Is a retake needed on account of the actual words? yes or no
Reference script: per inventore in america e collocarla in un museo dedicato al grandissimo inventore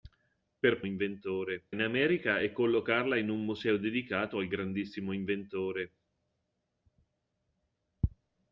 no